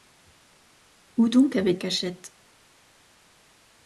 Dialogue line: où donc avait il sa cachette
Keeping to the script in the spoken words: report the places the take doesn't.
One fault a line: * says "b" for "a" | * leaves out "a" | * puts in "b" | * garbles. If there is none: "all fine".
* leaves out "il sa"